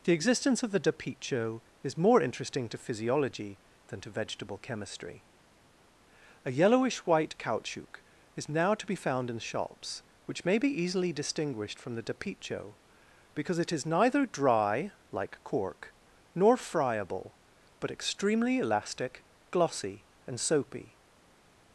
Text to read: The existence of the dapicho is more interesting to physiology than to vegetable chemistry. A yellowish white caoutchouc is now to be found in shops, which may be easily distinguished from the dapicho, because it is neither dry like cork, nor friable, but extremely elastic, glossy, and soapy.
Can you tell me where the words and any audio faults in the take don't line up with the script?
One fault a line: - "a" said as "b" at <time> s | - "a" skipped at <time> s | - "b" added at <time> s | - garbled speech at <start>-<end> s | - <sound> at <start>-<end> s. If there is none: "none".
none